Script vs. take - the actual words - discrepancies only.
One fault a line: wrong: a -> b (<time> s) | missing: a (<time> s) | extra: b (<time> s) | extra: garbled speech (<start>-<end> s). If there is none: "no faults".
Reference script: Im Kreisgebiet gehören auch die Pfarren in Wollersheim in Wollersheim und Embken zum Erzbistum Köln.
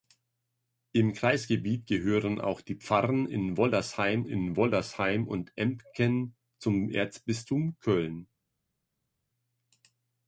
no faults